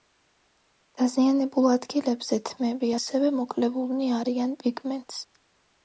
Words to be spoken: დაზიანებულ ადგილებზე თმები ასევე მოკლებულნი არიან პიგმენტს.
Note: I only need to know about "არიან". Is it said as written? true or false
true